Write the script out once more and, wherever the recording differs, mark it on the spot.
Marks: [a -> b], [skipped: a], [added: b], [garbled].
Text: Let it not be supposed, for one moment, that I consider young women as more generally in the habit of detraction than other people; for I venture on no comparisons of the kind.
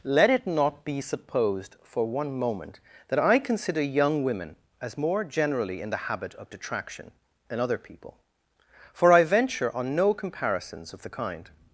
Let it not be supposed, for one moment, that I consider young women as more generally in the habit of detraction than other people; for I venture on no comparisons of the kind.